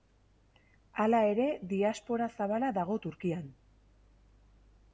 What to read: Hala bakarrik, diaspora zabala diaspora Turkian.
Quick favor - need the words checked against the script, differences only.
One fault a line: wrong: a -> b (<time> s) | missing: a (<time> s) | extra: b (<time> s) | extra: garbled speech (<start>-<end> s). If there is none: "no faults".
wrong: bakarrik -> ere (1.3 s)
wrong: diaspora -> dago (2.8 s)